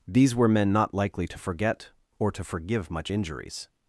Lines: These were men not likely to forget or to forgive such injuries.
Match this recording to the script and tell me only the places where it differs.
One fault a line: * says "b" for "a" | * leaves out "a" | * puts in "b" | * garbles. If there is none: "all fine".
* says "much" for "such"